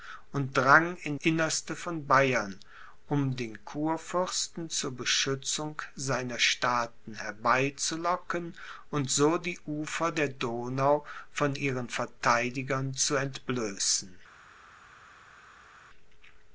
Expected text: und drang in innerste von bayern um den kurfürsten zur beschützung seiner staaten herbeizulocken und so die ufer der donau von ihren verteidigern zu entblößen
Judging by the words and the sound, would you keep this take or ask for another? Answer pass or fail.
pass